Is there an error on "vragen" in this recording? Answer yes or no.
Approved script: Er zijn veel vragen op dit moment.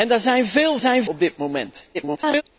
yes